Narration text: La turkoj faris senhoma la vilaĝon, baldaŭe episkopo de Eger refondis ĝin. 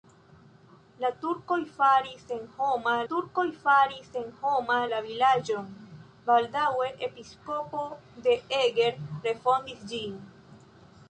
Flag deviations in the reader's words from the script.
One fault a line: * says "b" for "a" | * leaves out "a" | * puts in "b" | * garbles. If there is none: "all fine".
* puts in "turkoj faris senhoma"